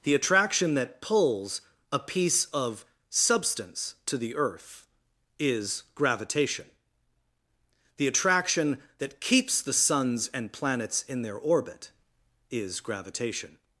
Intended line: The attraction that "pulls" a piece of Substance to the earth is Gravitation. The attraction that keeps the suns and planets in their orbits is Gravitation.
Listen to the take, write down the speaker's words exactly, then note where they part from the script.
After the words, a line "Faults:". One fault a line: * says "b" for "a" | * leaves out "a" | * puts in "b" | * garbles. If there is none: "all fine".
The attraction that "pulls" a piece of Substance to the earth is Gravitation. The attraction that keeps the suns and planets in their orbit is Gravitation.
Faults:
* says "orbit" for "orbits"